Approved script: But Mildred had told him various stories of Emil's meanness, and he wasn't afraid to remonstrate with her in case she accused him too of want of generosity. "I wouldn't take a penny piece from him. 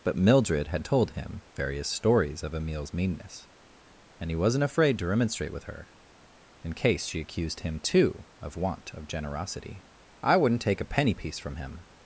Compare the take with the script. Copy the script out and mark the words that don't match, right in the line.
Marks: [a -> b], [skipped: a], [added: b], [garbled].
But Mildred had told him various stories of Emil's meanness, and he wasn't afraid to remonstrate with her in case she accused him too of want of generosity. "I wouldn't take a penny piece from him.